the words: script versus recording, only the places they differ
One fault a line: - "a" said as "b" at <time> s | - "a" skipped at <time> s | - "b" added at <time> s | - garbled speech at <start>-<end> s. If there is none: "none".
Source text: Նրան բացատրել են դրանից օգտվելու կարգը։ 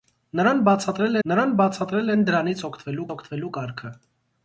- "նրան բացատրել" added at 1.3 s
- "օգտվելու" added at 3.2 s